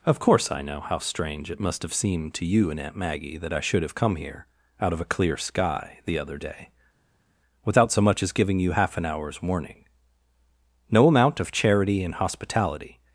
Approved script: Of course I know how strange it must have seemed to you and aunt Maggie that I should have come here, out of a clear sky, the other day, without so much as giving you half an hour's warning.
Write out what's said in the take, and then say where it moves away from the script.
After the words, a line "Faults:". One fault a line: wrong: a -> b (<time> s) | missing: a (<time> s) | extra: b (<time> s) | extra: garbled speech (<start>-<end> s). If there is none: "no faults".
Of course I know how strange it must have seemed to you and aunt Maggie that I should have come here, out of a clear sky, the other day, without so much as giving you half an hour's warning. No amount of charity and hospitality
Faults:
extra: No amount of charity and hospitality (10.9 s)